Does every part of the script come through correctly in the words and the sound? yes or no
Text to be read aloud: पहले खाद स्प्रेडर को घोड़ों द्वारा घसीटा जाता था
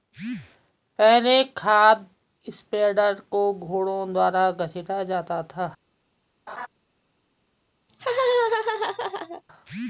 no